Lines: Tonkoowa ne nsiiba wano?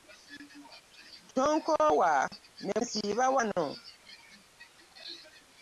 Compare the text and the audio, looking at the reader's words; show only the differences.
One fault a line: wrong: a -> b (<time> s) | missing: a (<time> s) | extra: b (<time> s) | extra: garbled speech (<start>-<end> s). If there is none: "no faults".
no faults